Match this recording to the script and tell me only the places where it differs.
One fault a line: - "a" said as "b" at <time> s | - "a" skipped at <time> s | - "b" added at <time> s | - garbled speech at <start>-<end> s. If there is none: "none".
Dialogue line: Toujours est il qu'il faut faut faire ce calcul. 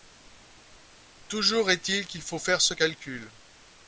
- "faut" skipped at 2.4 s